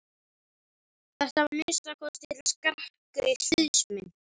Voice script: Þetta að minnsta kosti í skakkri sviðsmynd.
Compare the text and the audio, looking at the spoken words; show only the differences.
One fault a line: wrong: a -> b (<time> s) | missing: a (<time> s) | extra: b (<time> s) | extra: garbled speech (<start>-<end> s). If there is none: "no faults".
no faults